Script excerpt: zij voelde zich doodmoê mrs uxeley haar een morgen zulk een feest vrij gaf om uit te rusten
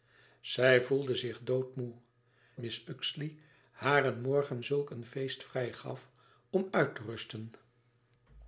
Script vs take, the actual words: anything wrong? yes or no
no